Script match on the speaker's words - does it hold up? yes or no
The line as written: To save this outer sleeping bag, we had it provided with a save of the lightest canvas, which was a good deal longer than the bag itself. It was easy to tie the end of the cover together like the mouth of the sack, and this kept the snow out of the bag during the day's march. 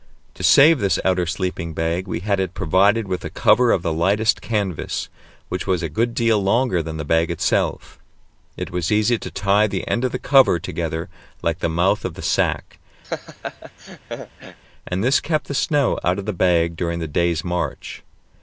no